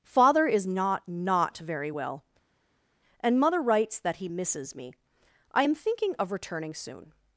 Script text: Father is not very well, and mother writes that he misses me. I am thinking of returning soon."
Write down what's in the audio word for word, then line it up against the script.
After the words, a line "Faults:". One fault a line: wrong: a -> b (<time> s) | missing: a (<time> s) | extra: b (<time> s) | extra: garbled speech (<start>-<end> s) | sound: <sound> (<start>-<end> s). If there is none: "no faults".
Father is not not very well, and mother writes that he misses me. I am thinking of returning soon."
Faults:
extra: not (1.1 s)